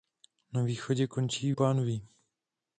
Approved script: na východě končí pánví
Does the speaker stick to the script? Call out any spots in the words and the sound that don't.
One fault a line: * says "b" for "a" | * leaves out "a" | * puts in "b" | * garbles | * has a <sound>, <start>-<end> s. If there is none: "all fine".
all fine